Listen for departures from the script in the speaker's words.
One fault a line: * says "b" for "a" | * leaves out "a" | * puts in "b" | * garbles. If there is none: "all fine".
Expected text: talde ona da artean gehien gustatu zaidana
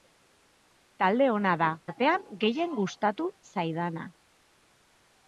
all fine